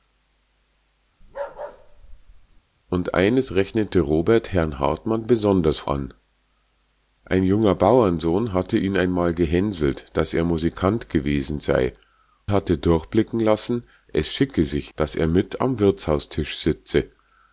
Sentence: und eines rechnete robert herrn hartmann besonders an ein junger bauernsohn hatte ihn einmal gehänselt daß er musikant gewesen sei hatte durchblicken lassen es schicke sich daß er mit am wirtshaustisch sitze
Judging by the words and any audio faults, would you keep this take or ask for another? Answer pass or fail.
fail